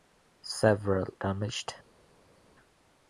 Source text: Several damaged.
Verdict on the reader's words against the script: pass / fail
pass